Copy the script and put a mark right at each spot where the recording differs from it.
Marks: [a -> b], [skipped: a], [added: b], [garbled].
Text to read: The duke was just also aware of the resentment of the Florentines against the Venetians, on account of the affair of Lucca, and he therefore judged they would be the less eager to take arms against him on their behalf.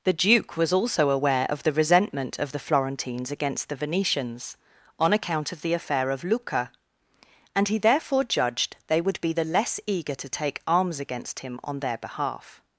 The duke was [skipped: just] also aware of the resentment of the Florentines against the Venetians, on account of the affair of Lucca, and he therefore judged they would be the less eager to take arms against him on their behalf.